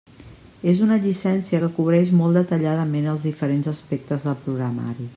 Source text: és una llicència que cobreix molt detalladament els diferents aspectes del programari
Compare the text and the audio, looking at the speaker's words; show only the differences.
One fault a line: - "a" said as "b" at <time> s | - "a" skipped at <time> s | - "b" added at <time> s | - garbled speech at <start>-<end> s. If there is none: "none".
none